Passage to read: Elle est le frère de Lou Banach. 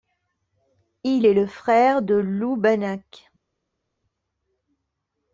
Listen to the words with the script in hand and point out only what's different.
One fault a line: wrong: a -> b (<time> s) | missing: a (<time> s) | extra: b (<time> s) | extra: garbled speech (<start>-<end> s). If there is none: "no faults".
wrong: Elle -> Il (1.0 s)